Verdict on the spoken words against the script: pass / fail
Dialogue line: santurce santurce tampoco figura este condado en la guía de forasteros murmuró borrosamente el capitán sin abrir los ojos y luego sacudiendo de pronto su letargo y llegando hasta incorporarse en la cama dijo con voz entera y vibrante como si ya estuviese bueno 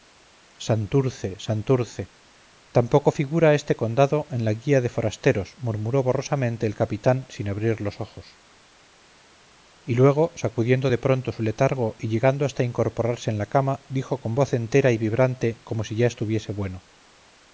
pass